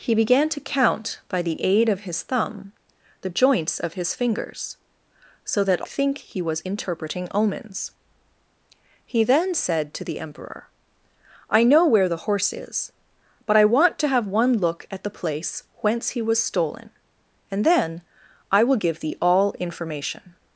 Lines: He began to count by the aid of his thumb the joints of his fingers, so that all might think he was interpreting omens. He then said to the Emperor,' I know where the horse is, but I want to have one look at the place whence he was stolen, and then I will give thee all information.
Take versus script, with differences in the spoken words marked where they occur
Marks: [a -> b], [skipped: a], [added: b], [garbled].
He began to count by the aid of his thumb the joints of his fingers, so that [skipped: all might] think he was interpreting omens. He then said to the Emperor,' I know where the horse is, but I want to have one look at the place whence he was stolen, and then I will give thee all information.